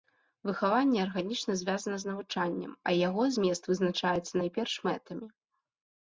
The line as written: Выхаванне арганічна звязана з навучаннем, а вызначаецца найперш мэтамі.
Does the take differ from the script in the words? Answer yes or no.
yes